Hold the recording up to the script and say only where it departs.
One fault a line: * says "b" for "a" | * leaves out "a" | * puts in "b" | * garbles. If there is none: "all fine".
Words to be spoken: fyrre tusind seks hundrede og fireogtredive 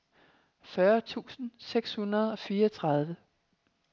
all fine